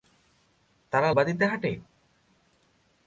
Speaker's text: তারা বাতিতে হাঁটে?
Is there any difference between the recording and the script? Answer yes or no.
no